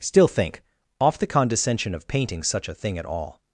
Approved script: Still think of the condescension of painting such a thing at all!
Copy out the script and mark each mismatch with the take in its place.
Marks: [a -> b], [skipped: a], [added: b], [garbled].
Still think [of -> off] the condescension of painting such a thing at all!